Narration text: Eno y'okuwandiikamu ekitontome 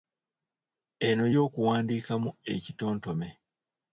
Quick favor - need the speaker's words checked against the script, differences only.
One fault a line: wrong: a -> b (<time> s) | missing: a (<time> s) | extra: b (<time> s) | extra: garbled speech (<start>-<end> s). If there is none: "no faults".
no faults